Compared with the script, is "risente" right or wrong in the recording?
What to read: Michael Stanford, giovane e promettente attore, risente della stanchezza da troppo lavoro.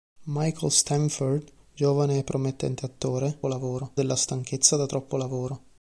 wrong